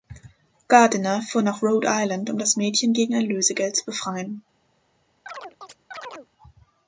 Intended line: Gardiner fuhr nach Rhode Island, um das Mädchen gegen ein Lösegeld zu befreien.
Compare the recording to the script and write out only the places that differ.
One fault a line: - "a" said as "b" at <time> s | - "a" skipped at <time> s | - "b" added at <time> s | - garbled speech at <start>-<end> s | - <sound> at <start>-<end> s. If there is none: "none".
- chirp at 5.3-6.3 s